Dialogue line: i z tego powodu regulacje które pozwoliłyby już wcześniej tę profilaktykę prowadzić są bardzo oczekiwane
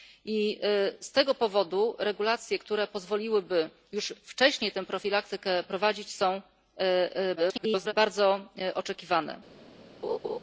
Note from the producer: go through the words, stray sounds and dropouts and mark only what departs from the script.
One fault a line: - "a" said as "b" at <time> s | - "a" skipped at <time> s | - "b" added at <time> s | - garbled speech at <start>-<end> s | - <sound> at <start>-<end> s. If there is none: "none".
- garbled speech at 7.4-7.9 s
- laugh at 10.0-10.4 s